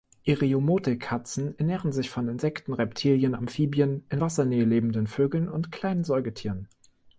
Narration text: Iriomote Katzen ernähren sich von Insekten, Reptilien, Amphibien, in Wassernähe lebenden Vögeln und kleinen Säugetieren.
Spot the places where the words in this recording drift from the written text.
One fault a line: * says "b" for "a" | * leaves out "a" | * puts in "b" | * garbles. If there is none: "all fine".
all fine